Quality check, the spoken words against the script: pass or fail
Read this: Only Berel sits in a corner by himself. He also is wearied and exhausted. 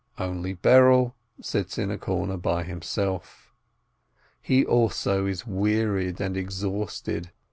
pass